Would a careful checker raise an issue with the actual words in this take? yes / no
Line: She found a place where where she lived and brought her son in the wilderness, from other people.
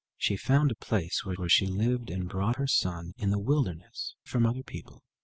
no